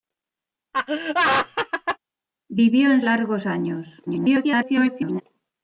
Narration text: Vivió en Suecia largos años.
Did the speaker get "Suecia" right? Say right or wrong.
wrong